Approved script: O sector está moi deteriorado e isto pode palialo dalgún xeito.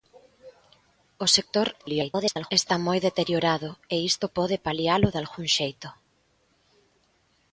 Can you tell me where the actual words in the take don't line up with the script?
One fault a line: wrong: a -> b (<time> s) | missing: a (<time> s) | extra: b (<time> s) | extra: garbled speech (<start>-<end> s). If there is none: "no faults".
extra: garbled speech (1.8-2.5 s)